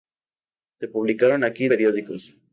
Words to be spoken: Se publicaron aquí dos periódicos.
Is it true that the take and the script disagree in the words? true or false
true